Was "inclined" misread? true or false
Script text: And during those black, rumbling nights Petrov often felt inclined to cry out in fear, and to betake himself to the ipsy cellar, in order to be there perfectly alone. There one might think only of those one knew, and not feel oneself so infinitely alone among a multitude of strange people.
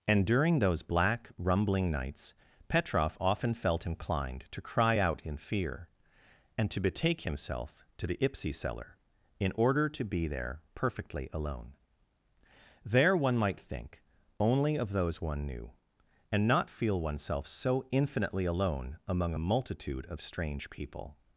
false